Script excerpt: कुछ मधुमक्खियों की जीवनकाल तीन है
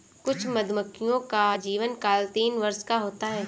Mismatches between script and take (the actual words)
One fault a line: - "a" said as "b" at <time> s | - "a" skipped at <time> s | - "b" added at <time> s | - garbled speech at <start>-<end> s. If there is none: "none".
- "की" said as "का" at 1.3 s
- "वर्ष का होता" added at 2.6 s